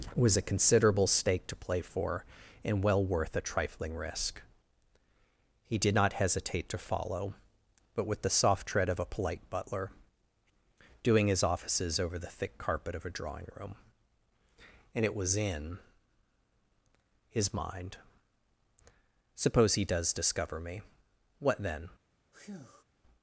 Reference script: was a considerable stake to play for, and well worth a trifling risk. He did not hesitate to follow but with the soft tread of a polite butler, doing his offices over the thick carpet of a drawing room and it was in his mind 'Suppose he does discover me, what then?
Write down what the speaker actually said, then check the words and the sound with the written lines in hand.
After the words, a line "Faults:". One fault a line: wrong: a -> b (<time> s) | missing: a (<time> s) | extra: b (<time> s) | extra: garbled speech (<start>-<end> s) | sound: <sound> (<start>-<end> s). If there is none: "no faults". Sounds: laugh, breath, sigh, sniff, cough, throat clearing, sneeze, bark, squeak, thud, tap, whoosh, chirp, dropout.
was a considerable stake to play for, and well worth a trifling risk. He did not hesitate to follow but with the soft tread of a polite butler, doing his offices over the thick carpet of a drawing room and it was in his mind 'Suppose he does discover me, what then?
Faults:
sound: breath (22.3-22.8 s)